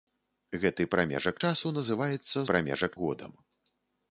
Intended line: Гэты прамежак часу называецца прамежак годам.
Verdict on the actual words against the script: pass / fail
pass